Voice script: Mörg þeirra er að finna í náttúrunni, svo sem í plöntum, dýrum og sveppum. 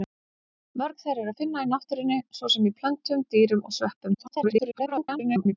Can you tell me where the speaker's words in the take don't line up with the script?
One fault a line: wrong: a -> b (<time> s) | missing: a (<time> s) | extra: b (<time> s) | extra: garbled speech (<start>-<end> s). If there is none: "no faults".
extra: garbled speech (4.1-5.5 s)